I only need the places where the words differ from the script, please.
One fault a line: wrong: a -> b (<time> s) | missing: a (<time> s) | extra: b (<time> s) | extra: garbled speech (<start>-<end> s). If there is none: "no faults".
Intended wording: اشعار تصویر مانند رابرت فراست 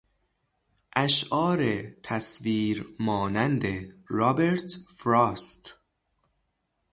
no faults